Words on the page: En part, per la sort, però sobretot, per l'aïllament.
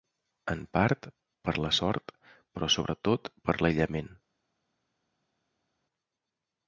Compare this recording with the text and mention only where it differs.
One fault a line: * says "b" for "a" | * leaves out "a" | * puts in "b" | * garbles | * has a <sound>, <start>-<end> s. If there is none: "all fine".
all fine